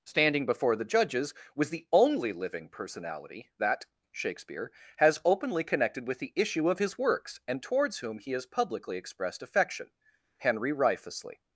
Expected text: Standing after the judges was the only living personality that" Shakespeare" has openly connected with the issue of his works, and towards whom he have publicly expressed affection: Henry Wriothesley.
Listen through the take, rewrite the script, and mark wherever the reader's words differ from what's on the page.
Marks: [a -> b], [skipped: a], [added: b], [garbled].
Standing [after -> before] the judges was the only living personality that" Shakespeare" has openly connected with the issue of his works, and towards whom he [have -> has] publicly expressed affection: Henry Wriothesley.